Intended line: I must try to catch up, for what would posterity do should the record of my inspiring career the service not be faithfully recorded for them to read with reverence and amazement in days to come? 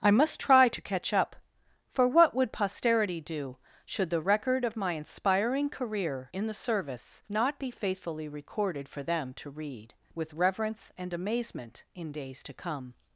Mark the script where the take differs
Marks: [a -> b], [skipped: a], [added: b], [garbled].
I must try to catch up, for what would posterity do should the record of my inspiring career [added: in] the service not be faithfully recorded for them to read with reverence and amazement in days to come?